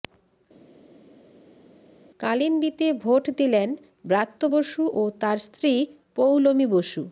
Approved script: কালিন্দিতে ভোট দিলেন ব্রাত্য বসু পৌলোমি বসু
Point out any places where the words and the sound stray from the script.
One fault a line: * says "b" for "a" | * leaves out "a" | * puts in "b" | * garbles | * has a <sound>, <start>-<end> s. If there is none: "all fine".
* puts in "ও তাঁর স্ত্রী"